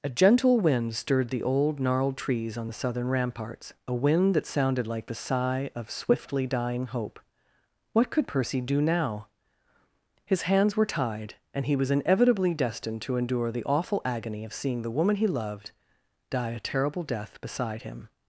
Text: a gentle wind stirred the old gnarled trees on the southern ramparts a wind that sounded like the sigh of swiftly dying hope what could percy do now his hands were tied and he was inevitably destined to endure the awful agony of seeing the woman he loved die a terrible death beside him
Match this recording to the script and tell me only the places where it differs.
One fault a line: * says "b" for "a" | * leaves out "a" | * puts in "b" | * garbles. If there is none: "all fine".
all fine